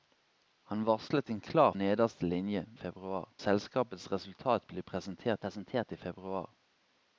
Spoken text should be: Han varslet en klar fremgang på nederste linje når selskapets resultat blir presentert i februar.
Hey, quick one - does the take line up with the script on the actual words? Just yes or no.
no